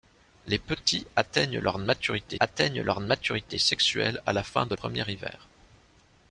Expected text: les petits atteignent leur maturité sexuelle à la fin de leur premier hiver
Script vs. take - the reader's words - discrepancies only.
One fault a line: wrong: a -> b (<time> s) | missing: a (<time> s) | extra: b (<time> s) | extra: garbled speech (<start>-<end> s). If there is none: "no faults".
extra: atteignent leur maturité (2.4 s)
missing: leur (4.7 s)